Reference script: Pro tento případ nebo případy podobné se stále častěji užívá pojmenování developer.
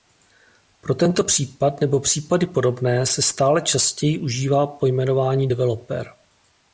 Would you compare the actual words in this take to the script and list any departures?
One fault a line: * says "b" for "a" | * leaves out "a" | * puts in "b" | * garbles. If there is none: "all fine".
all fine